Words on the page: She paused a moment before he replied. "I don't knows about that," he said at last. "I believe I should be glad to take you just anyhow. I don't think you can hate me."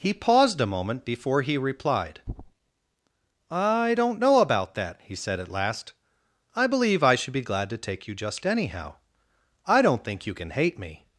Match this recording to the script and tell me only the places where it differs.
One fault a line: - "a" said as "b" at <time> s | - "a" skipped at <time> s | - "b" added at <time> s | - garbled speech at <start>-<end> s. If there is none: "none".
- "She" said as "He" at 0.0 s
- "knows" said as "know" at 4.2 s